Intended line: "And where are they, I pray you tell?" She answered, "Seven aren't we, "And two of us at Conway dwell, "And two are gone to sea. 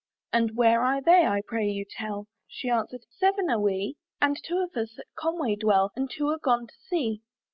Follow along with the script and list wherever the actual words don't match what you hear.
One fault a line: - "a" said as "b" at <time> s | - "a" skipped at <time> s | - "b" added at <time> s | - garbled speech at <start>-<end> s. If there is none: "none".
- "aren't" said as "are" at 3.5 s